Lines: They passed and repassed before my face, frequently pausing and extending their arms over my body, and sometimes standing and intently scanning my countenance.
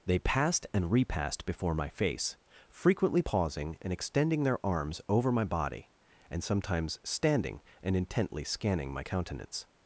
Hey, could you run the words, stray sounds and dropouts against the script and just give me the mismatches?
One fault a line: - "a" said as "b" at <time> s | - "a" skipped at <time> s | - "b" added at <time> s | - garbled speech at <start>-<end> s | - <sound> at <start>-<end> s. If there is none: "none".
none